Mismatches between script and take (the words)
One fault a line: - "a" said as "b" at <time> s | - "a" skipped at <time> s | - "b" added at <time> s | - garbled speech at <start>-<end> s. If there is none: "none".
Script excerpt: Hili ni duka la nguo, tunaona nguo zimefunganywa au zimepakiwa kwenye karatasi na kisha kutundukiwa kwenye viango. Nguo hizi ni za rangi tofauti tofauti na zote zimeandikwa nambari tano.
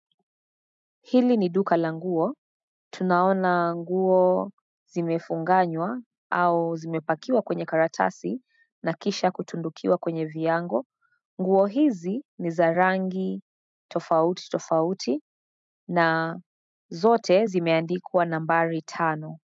none